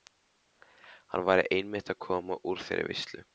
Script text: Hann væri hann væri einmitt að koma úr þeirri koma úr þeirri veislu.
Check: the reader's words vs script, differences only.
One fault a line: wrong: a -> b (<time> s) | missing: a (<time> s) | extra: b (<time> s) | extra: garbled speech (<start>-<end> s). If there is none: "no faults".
missing: hann væri (1.4 s)
missing: koma úr þeirri (2.9 s)